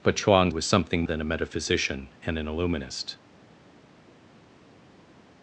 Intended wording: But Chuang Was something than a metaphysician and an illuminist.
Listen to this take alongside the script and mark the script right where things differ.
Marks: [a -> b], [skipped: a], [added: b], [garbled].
But Chuang Was something than a metaphysician and an illuminist.